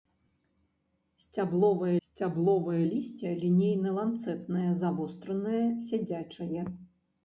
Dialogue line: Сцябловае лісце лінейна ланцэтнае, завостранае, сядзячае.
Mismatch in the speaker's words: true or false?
true